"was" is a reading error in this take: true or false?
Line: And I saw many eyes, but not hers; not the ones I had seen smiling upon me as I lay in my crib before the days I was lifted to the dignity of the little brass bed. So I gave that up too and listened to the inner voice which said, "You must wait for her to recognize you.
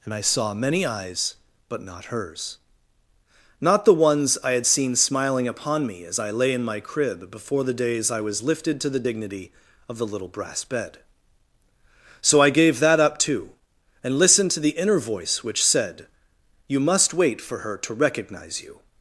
false